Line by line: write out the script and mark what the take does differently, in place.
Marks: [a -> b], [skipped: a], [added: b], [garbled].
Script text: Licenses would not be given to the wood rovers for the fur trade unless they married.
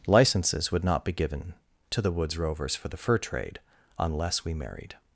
Licenses would not be given to the [wood -> woods] rovers for the fur trade unless [they -> we] married.